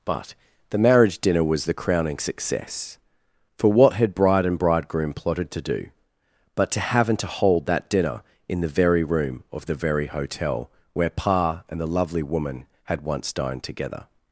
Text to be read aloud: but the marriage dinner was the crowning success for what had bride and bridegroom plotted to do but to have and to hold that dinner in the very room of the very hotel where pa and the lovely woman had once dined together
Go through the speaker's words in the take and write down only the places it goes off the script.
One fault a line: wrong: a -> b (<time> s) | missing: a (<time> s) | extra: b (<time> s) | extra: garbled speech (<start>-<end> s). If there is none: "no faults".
no faults